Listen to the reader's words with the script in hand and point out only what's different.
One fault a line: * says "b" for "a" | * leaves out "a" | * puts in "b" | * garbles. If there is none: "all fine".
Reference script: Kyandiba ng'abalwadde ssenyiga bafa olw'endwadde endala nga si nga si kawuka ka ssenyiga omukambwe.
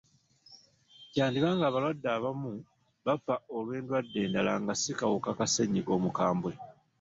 * says "abamu" for "ssenyiga"
* leaves out "nga si"